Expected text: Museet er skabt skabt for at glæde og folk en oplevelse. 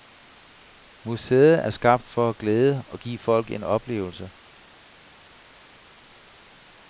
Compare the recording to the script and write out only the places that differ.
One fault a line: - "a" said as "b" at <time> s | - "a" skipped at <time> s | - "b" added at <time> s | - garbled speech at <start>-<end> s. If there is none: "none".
- "skabt" skipped at 2.1 s
- "give" added at 3.0 s